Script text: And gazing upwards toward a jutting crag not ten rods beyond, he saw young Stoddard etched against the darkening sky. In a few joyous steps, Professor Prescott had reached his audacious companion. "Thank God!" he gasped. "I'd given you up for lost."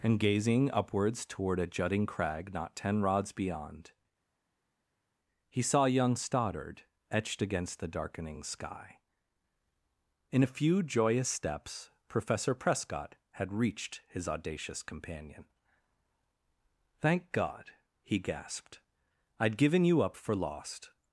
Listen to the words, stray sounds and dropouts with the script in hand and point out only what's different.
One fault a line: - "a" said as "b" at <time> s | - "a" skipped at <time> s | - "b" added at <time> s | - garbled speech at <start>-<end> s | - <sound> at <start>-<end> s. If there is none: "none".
none